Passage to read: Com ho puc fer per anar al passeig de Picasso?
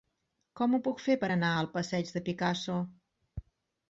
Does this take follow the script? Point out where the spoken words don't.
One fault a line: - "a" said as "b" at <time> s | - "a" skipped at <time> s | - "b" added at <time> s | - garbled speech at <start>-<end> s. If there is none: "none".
none